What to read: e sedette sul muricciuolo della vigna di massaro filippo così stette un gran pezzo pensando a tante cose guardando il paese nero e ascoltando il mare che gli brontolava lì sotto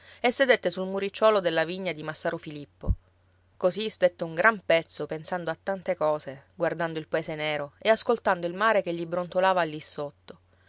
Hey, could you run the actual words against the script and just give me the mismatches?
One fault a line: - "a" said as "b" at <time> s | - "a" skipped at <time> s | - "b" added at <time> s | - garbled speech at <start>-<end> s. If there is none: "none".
none